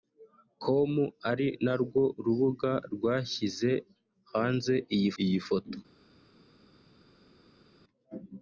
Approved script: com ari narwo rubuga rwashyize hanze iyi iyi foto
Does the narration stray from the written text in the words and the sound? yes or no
no